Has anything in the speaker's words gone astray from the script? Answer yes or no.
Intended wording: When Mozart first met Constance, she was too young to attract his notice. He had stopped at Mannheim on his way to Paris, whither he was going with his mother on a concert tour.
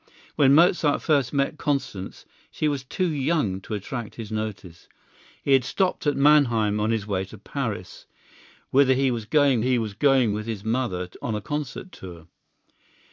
yes